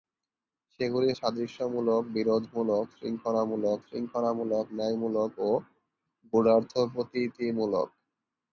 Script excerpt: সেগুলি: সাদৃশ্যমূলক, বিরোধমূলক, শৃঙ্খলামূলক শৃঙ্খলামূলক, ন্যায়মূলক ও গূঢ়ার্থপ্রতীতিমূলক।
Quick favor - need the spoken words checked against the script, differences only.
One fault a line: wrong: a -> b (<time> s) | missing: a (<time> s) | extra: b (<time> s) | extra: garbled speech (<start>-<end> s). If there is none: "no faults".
no faults